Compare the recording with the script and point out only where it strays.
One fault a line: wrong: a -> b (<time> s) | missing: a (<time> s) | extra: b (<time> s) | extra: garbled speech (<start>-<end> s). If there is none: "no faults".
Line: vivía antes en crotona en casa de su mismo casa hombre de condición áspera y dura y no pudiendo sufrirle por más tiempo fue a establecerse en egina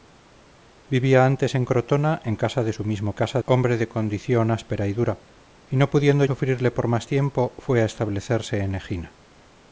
no faults